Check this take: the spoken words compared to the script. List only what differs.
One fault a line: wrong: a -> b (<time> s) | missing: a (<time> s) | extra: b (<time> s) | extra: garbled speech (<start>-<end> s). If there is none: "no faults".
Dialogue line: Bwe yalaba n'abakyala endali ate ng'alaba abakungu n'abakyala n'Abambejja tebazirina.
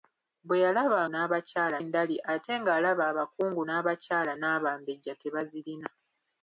no faults